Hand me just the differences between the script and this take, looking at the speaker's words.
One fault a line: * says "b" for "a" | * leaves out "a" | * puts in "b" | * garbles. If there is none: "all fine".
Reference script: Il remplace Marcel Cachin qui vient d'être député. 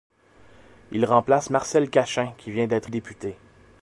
all fine